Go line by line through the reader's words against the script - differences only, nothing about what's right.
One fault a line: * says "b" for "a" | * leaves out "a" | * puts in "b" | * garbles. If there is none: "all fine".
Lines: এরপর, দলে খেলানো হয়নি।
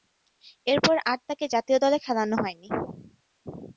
* puts in "আর তাকে জাতীয়"